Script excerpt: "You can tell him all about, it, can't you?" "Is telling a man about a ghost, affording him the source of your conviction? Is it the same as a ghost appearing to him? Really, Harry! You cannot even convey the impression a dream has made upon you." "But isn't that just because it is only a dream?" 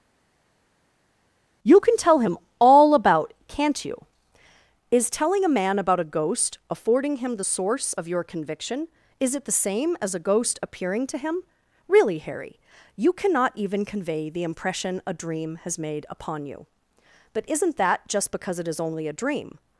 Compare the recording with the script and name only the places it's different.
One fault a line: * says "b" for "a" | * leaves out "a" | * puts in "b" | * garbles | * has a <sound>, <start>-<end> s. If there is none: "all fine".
* leaves out "it"